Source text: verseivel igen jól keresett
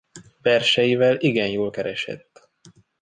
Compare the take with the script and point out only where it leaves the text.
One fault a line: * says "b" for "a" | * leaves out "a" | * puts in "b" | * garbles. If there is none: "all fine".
all fine